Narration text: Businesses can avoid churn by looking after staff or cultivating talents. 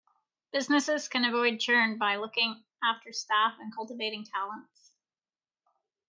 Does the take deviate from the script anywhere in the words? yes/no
yes